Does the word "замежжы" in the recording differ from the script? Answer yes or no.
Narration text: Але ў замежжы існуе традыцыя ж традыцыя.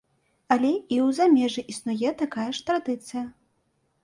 no